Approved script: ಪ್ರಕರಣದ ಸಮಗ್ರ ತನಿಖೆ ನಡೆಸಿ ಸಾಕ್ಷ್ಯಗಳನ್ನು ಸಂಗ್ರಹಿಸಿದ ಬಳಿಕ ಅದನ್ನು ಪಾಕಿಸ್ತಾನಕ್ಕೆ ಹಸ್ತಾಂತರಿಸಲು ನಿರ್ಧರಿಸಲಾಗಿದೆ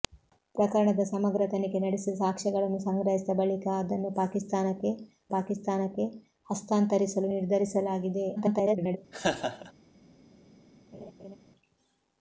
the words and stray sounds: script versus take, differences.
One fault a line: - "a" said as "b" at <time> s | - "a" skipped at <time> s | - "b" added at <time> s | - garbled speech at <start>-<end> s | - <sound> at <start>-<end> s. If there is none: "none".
- "ಪಾಕಿಸ್ತಾನಕ್ಕೆ" added at 5.3 s
- garbled speech at 8.4-9.0 s
- laugh at 9.1-9.7 s
- laugh at 10.9-11.4 s